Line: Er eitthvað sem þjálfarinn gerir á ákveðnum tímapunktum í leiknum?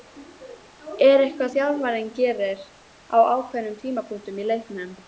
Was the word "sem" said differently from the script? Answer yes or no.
yes